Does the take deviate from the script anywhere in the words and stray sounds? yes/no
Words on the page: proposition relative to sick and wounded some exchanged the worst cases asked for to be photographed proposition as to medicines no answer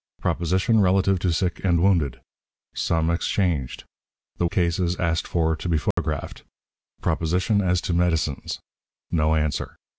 yes